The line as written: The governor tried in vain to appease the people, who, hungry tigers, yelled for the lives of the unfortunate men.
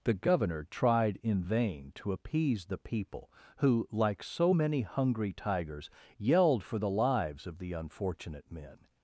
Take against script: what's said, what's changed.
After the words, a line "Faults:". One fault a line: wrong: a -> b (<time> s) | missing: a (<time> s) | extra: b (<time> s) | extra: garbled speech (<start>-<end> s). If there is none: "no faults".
The governor tried in vain to appease the people, who, like so many hungry tigers, yelled for the lives of the unfortunate men.
Faults:
extra: like so many (3.9 s)